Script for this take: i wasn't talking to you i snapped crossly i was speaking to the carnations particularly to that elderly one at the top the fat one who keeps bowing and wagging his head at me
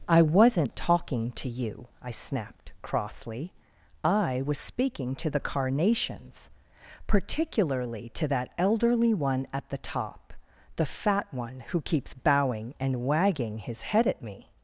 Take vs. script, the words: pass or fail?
pass